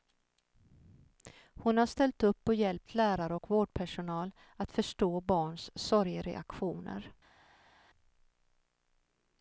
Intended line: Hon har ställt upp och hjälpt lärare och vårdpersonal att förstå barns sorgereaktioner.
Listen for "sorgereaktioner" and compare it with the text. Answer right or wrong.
right